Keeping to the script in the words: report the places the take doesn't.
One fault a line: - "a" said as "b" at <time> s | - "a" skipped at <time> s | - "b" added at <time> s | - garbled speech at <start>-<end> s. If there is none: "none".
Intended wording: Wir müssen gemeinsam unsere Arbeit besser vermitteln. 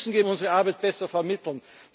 - "gemeinsam" skipped at 0.2 s